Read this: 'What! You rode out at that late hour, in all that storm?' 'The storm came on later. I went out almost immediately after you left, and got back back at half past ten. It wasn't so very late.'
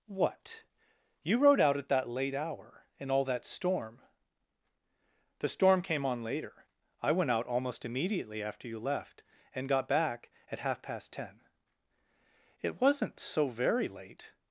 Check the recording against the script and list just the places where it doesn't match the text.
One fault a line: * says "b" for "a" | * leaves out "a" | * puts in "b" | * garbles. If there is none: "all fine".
* leaves out "back"